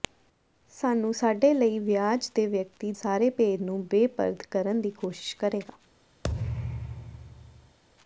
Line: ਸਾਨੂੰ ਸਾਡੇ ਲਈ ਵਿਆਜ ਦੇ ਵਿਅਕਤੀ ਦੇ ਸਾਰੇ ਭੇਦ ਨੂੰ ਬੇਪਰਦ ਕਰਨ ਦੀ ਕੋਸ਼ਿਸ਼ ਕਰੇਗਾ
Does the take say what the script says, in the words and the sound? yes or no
no